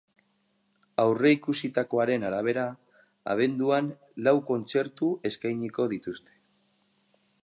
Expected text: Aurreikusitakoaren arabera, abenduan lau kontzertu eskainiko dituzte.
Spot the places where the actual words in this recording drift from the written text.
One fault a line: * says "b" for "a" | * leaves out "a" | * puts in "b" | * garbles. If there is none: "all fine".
all fine